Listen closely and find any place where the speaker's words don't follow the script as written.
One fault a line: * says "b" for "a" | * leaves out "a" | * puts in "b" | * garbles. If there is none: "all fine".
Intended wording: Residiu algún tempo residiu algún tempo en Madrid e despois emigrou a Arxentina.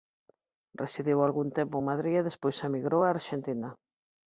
* leaves out "residiu algún tempo"